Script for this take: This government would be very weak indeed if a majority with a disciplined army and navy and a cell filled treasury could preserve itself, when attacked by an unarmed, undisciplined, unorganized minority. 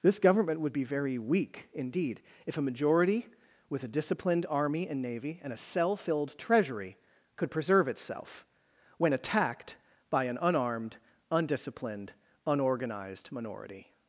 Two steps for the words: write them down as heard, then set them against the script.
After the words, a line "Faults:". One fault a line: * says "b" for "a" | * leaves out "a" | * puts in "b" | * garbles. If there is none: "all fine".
This government would be very weak indeed if a majority with a disciplined army and navy and a cell filled treasury could preserve itself, when attacked by an unarmed, undisciplined, unorganized minority.
Faults:
all fine